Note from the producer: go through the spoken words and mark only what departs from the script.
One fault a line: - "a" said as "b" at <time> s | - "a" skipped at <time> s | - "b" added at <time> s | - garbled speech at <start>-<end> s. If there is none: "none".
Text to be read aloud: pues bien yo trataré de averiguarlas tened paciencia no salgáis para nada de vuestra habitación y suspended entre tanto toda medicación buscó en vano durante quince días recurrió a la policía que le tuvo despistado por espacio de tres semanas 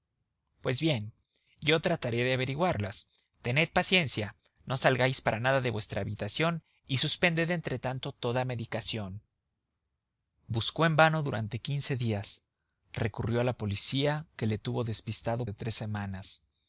- "por espacio" skipped at 15.4 s